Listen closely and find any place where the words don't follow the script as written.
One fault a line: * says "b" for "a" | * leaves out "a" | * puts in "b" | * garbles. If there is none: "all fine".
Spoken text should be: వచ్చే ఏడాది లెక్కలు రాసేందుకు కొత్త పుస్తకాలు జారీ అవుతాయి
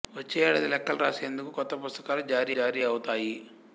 * puts in "జారీ"